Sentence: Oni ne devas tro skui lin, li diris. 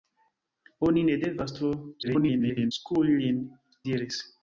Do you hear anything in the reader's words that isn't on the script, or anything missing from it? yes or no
yes